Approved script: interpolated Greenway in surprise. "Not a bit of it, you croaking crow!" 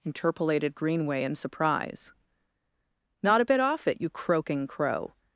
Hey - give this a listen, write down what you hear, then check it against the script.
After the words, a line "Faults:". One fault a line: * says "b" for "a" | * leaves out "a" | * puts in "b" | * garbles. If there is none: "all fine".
interpolated Greenway in surprise. "Not a bit off it, you croaking crow!"
Faults:
* says "off" for "of"